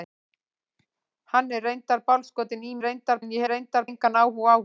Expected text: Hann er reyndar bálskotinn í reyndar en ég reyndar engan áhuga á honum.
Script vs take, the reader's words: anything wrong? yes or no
no